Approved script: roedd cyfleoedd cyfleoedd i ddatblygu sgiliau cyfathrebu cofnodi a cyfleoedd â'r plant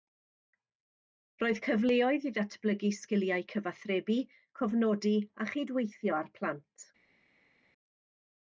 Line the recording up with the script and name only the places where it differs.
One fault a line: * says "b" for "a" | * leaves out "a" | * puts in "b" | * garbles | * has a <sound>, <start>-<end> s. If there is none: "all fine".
* leaves out "cyfleoedd"
* says "chydweithio" for "cyfleoedd"